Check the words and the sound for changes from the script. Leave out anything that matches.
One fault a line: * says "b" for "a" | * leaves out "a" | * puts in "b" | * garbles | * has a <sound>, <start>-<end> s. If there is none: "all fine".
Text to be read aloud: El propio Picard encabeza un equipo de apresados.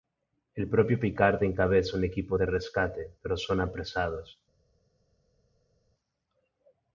* puts in "rescate pero son"